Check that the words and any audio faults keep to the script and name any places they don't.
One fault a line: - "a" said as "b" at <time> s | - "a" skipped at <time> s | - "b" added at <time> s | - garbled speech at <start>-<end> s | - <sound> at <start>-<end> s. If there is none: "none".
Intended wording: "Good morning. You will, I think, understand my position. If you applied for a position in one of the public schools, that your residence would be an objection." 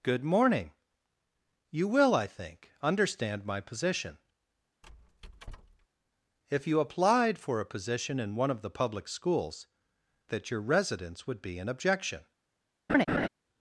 - squeak at 4.8-5.9 s
- laugh at 12.9-13.3 s